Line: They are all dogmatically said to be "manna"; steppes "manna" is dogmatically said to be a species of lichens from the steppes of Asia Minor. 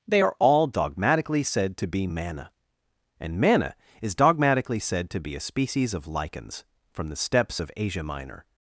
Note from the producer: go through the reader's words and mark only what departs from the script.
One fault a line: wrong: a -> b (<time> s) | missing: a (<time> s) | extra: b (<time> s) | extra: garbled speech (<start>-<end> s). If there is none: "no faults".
wrong: steppes -> and (3.2 s)